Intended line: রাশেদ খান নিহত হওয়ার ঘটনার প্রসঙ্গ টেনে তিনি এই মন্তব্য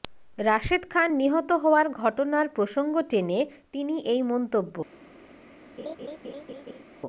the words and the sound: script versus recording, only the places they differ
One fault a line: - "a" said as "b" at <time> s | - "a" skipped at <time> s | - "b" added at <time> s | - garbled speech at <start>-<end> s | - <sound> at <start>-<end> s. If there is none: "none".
- laugh at 5.8-6.8 s